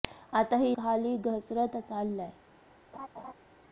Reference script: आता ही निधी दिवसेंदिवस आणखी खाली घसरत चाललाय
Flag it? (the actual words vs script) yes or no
yes